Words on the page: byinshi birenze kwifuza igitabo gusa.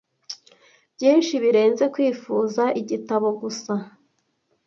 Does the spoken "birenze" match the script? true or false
true